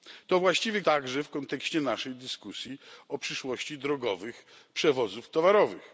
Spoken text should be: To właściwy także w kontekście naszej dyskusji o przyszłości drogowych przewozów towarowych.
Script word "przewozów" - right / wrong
right